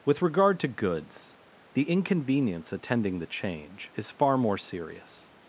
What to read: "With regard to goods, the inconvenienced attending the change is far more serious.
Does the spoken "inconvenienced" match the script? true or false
false